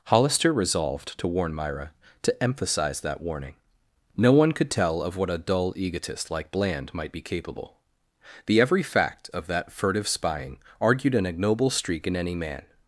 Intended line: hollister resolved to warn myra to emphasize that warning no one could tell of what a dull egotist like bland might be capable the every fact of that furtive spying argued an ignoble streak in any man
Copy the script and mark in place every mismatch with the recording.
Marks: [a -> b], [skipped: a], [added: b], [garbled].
hollister resolved to warn myra to emphasize that warning no one could tell of what a dull egotist like bland might be capable the every fact of that furtive spying argued an ignoble streak in any man